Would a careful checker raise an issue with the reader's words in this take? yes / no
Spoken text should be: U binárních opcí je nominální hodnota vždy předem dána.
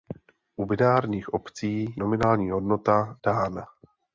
yes